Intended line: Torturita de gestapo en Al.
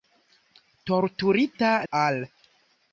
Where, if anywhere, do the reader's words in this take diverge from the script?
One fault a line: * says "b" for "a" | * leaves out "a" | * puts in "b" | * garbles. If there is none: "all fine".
* leaves out "de gestapo en"